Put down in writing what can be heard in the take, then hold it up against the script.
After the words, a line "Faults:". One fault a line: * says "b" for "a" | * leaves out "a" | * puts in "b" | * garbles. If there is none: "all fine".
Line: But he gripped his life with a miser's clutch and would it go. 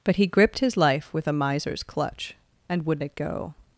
But he gripped his life with a miser's clutch and would it go.
Faults:
all fine